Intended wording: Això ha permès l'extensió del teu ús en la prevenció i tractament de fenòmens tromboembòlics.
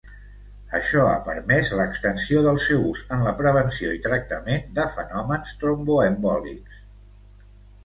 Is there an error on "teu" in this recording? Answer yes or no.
yes